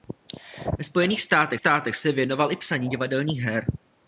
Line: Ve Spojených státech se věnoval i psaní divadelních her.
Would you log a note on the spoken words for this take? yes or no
yes